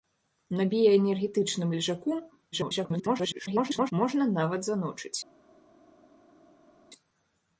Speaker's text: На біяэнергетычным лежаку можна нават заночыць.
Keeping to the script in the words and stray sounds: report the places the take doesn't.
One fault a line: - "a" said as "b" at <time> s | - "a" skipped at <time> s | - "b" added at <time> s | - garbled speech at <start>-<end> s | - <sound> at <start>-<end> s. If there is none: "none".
- garbled speech at 2.5-3.9 s